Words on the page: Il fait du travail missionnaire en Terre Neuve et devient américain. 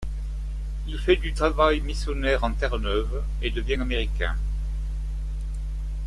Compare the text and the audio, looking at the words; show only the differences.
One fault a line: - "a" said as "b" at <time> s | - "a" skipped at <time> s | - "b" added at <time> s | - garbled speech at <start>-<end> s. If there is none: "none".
none